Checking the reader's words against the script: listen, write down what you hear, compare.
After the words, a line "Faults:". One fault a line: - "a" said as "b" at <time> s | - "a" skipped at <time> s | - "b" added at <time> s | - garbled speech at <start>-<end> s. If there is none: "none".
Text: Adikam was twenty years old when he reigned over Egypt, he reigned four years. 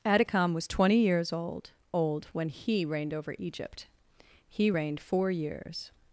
Adikam was twenty years old old when he reigned over Egypt, he reigned four years.
Faults:
- "old" added at 1.9 s